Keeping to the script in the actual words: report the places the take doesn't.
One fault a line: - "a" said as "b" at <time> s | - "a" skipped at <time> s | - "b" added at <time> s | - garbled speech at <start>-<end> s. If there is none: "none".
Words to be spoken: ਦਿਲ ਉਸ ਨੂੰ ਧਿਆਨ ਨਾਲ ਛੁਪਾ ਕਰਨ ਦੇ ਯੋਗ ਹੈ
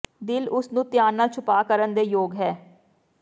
none